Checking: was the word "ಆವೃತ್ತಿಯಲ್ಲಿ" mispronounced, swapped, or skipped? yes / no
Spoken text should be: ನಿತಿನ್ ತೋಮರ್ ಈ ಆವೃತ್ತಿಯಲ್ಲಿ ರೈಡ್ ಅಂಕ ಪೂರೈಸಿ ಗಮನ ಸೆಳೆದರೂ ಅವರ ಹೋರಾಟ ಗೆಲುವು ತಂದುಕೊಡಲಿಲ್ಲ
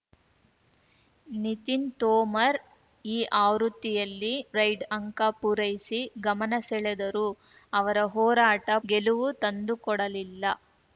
no